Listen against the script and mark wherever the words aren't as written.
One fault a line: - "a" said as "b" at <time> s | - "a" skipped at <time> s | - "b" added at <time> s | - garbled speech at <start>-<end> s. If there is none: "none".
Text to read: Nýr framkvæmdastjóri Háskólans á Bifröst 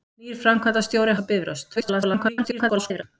- "Háskólans" skipped at 1.1 s
- garbled speech at 1.8-3.0 s